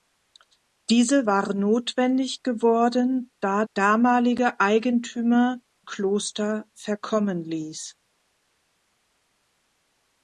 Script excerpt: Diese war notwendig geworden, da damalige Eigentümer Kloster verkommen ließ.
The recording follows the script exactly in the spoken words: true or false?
true